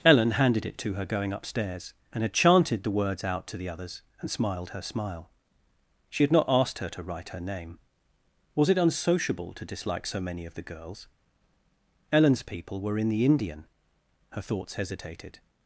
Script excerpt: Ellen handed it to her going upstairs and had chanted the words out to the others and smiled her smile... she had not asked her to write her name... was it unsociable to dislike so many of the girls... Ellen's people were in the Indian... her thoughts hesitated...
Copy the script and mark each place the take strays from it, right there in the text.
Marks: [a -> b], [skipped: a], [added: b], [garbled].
Ellen handed it to her going upstairs and had chanted the words out to the others and smiled her smile... she had not asked her to write her name... was it unsociable to dislike so many of the girls... Ellen's people were in the Indian... her thoughts hesitated...